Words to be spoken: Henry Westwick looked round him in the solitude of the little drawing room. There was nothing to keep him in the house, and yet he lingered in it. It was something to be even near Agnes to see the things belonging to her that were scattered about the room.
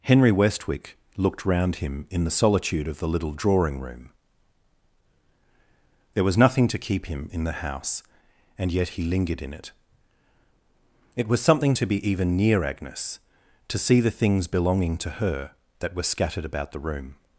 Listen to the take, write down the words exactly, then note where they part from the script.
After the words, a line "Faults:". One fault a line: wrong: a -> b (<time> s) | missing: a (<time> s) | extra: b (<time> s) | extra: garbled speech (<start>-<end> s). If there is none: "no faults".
Henry Westwick looked round him in the solitude of the little drawing room. There was nothing to keep him in the house, and yet he lingered in it. It was something to be even near Agnes to see the things belonging to her that were scattered about the room.
Faults:
no faults